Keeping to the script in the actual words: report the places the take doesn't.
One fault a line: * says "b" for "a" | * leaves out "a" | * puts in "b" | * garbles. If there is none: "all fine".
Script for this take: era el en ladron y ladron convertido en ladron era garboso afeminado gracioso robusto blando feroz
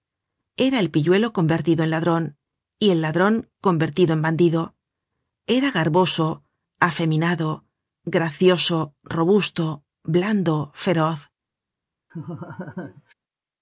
* puts in "pilluelo convertido"
* puts in "el"
* says "bandido" for "ladron"